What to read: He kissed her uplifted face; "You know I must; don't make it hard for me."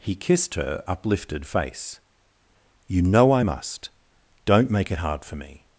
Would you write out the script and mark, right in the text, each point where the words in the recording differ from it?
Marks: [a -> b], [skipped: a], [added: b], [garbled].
He kissed her uplifted face; "You know I must; don't make it hard for me."